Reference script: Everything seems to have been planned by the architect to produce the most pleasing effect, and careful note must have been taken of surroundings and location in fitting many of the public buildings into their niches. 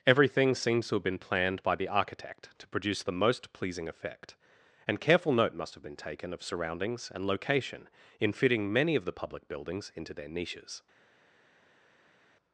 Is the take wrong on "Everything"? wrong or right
right